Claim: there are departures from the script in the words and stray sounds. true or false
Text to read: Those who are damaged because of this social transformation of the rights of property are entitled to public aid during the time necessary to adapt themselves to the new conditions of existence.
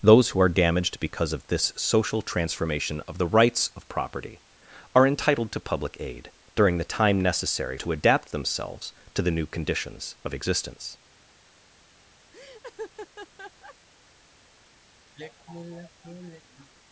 true